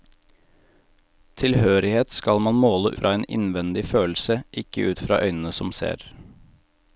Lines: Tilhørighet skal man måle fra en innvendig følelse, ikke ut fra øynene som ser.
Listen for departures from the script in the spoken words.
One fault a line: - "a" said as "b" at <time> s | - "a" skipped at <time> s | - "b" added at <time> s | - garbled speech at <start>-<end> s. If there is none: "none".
none